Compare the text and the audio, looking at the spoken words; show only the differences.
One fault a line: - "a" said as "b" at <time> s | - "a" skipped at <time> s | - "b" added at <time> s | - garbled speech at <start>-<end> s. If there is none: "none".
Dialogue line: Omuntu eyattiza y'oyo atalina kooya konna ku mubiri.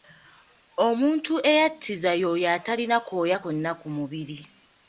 none